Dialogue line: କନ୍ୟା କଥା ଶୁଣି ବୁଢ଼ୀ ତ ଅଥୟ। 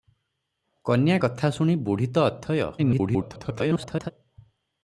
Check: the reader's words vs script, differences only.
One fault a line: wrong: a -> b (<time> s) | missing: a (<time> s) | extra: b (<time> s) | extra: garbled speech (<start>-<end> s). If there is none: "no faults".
extra: garbled speech (2.8-4.1 s)